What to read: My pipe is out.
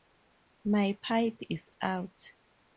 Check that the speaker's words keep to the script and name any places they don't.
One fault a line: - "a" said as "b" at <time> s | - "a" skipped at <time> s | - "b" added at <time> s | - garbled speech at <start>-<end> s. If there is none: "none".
none